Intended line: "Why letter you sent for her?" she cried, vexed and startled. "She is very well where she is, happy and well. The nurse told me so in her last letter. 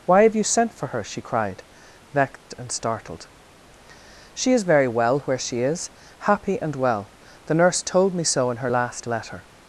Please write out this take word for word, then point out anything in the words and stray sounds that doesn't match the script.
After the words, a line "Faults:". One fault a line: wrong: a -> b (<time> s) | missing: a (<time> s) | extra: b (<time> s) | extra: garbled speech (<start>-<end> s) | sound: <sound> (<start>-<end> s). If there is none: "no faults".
"Why have you sent for her?" she cried, vexed and startled. "She is very well where she is, happy and well. The nurse told me so in her last letter.
Faults:
wrong: letter -> have (0.2 s)
sound: dropout (2.4-2.5 s)